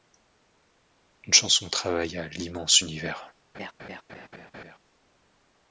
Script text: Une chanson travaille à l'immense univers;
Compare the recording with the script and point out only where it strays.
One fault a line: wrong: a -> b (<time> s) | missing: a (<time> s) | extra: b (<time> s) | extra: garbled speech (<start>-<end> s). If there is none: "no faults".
no faults